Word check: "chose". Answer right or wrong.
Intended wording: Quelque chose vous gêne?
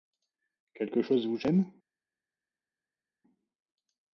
right